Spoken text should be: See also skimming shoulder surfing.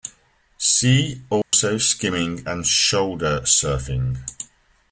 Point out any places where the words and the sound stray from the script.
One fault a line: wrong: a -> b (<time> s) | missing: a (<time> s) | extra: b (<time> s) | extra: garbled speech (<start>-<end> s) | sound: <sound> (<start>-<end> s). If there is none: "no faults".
sound: dropout (1.4-1.5 s)
extra: and (2.5 s)